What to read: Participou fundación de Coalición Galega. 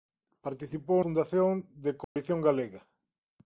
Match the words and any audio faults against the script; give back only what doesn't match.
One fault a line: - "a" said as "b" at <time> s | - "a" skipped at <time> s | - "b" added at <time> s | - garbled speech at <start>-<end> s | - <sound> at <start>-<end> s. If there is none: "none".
- dropout at 2.0-2.2 s